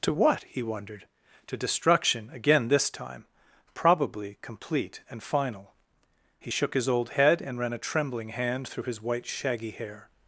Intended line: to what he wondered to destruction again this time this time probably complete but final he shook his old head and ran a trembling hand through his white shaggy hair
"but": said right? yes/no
no